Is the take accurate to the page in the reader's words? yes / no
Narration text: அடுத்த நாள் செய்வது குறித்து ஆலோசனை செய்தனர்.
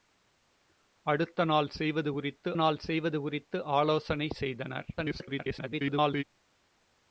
no